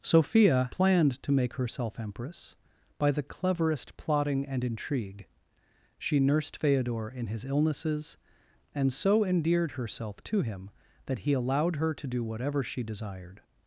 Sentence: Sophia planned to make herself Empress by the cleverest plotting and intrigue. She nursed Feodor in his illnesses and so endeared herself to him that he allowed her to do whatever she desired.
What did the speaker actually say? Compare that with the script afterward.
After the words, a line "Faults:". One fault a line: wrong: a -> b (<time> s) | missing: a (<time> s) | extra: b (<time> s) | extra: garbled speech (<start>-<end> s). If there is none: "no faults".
Sophia planned to make herself Empress by the cleverest plotting and intrigue. She nursed Feodor in his illnesses and so endeared herself to him that he allowed her to do whatever she desired.
Faults:
no faults